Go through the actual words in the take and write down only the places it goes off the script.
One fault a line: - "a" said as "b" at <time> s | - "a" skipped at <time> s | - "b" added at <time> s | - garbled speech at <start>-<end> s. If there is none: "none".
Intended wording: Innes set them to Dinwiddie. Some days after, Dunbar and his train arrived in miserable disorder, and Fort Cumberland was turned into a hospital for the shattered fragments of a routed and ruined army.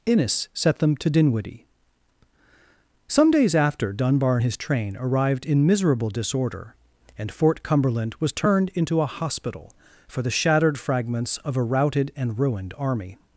none